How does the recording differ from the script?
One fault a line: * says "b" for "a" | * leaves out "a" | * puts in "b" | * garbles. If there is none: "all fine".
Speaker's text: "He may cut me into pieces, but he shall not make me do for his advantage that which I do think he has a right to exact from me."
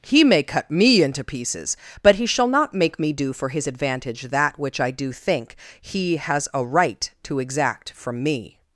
all fine